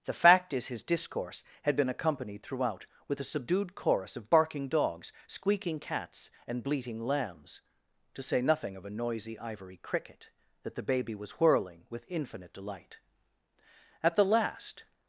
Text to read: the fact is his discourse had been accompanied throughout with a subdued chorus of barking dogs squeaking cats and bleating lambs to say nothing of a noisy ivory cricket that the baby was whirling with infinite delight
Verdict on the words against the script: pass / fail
fail